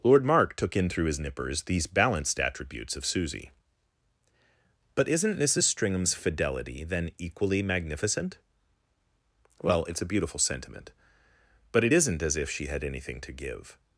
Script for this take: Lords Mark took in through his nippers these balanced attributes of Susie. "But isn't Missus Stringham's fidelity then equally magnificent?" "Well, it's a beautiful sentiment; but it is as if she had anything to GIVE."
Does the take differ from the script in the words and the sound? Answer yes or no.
yes